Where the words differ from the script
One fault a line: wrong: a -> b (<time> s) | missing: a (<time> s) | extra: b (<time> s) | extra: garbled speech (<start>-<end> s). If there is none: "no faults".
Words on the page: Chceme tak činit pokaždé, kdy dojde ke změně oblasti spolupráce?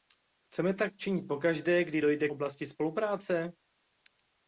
missing: ke změně (2.3 s)